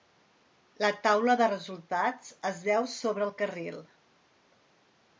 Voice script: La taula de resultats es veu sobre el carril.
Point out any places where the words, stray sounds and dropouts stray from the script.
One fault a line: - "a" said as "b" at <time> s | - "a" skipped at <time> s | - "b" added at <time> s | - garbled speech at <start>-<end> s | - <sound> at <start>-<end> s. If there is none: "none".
none